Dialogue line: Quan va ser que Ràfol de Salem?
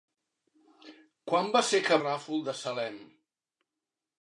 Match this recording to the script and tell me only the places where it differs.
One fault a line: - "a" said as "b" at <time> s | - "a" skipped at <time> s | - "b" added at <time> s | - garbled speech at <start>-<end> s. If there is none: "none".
none